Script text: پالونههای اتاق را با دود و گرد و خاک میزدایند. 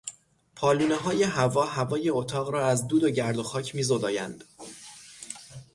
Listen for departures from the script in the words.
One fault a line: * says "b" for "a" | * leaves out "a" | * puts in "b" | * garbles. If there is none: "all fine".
* puts in "هوا هوای"
* says "از" for "با"